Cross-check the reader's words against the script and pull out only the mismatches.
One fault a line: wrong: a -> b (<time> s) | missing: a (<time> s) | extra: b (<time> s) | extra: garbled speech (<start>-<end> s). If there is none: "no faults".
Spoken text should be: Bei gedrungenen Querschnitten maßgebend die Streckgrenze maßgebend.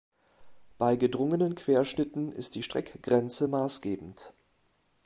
wrong: maßgebend -> ist (2.3 s)